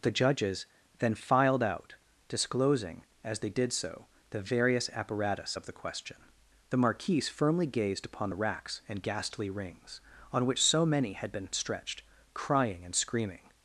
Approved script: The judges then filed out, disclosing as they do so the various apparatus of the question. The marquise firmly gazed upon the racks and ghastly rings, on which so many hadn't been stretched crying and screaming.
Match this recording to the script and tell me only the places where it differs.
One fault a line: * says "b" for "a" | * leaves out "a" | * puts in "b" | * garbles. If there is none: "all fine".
* says "did" for "do"
* says "had" for "hadn't"